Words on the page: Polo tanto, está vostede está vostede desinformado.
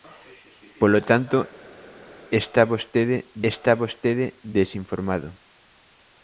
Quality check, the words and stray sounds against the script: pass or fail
pass